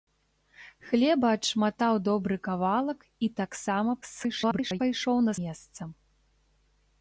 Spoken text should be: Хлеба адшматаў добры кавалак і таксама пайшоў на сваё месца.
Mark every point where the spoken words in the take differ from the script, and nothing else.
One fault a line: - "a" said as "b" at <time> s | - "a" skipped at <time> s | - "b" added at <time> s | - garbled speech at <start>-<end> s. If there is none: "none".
- garbled speech at 4.0-4.8 s
- "сваё" skipped at 5.3 s